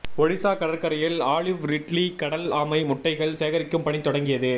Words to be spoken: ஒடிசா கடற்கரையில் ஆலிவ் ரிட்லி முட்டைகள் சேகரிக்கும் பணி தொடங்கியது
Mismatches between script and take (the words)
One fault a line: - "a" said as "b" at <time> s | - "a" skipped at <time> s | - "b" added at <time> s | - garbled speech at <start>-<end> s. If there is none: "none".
- "கடல் ஆமை" added at 2.1 s